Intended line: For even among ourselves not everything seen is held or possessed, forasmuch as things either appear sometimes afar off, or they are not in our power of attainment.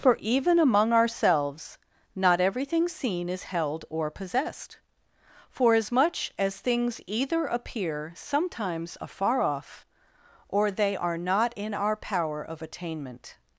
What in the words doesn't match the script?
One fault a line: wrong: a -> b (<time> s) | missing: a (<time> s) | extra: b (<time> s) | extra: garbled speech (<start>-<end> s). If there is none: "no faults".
no faults